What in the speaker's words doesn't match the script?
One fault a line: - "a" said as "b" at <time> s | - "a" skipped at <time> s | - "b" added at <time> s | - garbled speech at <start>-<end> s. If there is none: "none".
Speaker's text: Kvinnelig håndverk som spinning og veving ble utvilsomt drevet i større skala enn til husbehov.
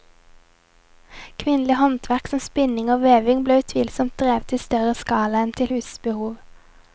none